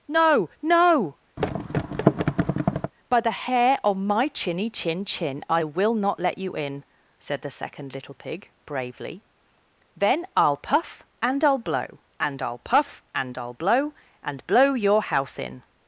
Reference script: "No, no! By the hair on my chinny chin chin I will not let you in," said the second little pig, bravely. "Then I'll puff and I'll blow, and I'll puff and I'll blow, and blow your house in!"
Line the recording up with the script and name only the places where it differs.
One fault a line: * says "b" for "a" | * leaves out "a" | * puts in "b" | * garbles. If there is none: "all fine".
all fine